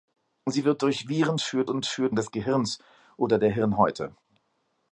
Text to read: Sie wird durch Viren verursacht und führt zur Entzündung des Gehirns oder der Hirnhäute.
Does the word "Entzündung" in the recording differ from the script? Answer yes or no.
yes